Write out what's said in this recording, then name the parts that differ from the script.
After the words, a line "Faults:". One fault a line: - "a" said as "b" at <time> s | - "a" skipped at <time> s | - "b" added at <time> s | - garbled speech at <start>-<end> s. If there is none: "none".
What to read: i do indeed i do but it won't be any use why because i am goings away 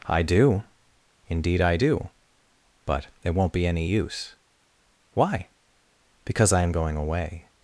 i do indeed i do but it won't be any use why because i am going away
Faults:
- "goings" said as "going" at 6.7 s